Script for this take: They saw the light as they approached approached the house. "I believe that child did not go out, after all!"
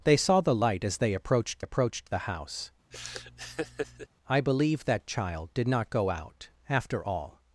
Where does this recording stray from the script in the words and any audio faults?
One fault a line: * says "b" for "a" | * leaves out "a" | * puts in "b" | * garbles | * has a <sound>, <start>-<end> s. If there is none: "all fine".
* has a laugh, 2.9-4.1 s